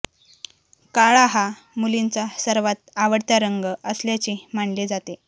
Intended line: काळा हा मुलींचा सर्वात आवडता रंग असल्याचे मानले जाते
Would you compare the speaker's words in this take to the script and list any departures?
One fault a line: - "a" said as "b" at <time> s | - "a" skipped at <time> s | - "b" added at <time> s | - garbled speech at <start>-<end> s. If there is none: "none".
none